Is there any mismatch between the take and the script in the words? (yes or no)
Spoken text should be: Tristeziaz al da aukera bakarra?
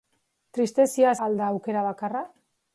no